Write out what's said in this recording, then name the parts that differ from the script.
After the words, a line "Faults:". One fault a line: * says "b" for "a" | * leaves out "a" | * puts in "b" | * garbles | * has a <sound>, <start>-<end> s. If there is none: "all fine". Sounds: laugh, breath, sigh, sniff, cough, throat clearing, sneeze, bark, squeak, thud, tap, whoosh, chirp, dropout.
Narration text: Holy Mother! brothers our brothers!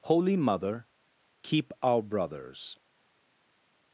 Holy Mother! keep our brothers!
Faults:
* says "keep" for "brothers"